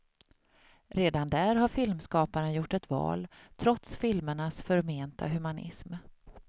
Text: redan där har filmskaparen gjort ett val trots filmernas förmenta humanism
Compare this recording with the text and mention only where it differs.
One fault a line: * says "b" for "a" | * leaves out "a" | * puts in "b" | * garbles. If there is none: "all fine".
all fine